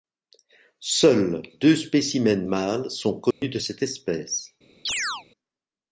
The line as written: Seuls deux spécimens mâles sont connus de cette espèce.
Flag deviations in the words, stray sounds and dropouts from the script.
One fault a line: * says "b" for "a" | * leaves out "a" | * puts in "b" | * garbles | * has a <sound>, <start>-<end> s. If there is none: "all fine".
* has a dropout, 3.3-3.4 s
* has a chirp, 4.9-5.3 s